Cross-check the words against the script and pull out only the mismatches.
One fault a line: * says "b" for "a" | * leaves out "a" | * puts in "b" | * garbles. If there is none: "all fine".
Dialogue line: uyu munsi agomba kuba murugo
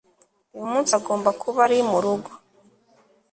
* puts in "ari"